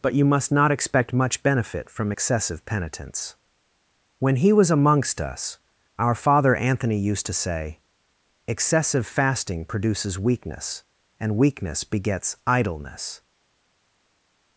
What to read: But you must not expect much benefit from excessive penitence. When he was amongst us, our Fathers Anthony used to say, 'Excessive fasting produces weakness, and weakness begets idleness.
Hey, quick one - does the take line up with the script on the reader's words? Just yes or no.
no